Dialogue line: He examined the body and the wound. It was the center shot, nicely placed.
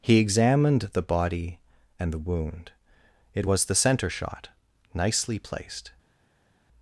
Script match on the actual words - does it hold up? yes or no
yes